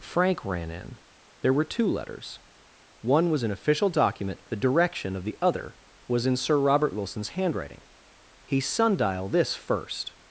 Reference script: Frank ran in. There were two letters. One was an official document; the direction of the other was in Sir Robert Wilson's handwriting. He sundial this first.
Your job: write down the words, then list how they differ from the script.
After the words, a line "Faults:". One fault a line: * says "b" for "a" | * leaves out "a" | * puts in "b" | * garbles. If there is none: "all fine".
Frank ran in. There were two letters. One was an official document; the direction of the other was in Sir Robert Wilson's handwriting. He sundial this first.
Faults:
all fine